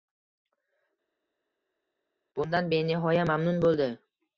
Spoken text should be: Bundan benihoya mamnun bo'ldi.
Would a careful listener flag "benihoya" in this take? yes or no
no